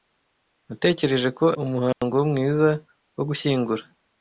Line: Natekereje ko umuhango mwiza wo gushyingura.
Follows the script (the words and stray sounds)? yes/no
no